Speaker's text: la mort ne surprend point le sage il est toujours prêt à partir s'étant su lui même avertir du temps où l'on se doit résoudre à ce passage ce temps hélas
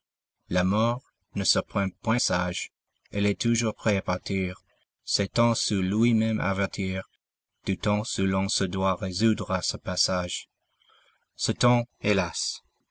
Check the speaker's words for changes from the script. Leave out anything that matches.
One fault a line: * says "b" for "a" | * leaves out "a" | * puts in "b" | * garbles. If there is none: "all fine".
* leaves out "le"